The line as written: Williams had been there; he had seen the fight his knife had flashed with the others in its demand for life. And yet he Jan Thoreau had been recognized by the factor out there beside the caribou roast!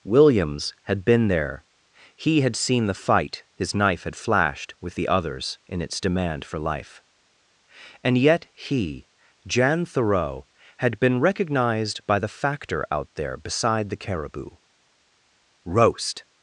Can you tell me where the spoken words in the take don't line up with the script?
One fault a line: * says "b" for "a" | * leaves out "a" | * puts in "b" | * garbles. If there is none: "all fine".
all fine